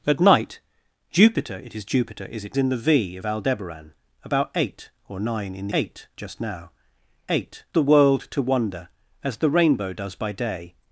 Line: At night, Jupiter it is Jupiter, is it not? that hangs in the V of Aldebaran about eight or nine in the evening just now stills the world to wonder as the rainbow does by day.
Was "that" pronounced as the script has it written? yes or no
no